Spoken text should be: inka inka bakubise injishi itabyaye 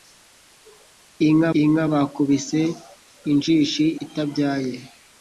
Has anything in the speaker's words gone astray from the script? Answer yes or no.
no